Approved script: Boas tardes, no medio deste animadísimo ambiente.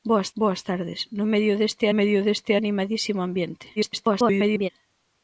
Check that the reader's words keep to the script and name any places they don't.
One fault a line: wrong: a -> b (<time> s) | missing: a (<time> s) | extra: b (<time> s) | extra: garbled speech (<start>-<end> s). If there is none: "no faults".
extra: boas (0.4 s)
extra: medio deste (2.0 s)
extra: garbled speech (3.8-4.7 s)